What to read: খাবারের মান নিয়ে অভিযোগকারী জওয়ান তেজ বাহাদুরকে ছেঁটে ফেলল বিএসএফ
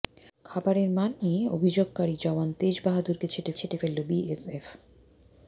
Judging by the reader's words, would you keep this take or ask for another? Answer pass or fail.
fail